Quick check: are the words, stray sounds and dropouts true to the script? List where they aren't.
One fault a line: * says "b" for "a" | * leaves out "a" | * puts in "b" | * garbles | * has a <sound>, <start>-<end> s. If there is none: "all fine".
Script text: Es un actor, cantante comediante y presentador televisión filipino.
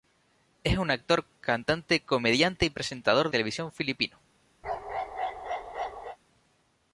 * has a bark, 4.6-6.2 s